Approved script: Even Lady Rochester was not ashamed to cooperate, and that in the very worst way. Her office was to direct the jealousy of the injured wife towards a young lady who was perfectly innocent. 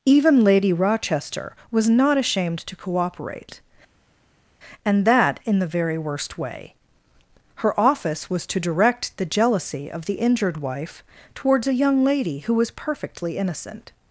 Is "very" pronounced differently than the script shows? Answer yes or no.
no